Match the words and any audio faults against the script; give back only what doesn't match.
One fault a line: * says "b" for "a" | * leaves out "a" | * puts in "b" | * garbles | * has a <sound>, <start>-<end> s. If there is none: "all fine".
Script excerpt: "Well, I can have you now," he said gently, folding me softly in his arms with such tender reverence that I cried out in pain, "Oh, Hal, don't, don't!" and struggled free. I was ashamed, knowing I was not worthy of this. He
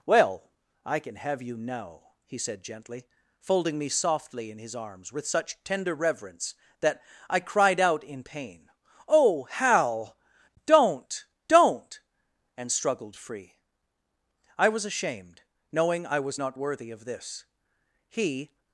all fine